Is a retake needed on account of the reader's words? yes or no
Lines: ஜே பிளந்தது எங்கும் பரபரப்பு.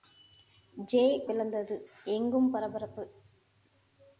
no